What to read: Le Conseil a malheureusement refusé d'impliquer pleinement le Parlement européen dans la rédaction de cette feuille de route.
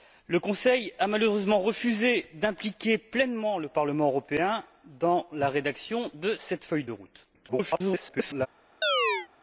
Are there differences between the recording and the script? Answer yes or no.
yes